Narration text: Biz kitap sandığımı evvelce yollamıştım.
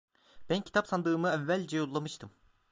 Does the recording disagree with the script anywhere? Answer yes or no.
yes